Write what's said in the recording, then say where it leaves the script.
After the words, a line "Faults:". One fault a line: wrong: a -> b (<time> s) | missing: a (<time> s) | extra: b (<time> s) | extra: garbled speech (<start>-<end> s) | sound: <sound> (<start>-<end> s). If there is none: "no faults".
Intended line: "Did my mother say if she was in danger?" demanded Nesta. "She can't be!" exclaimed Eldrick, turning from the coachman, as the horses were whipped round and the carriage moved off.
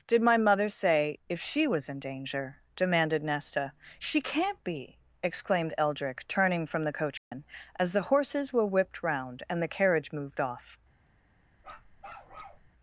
"Did my mother say if she was in danger?" demanded Nesta. "She can't be!" exclaimed Eldrick, turning from the coachman, as the horses were whipped round and the carriage moved off.
Faults:
sound: dropout (7.2-7.3 s)
sound: bark (11.6-12.7 s)